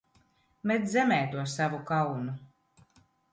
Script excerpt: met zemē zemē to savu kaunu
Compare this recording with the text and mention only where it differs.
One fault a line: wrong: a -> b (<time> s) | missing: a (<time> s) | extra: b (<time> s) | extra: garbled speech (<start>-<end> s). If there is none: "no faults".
missing: zemē (1.2 s)